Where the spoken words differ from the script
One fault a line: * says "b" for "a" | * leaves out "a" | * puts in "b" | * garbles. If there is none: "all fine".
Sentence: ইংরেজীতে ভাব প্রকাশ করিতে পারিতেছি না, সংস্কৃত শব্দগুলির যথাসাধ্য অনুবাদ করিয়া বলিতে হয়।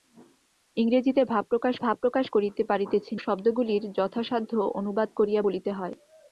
* puts in "ভাব প্রকাশ"
* leaves out "না সংস্কৃত"